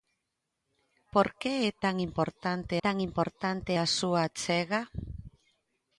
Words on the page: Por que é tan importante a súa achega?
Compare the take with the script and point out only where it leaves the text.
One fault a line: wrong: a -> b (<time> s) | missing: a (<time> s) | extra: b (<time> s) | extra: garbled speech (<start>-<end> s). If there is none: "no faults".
extra: tan importante (2.8 s)